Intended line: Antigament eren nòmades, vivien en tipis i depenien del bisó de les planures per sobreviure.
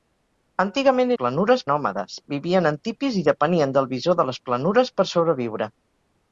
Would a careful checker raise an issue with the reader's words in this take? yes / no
yes